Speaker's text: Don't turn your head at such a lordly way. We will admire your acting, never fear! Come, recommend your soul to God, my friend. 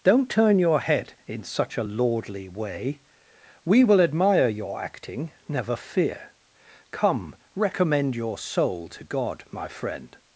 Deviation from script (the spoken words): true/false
true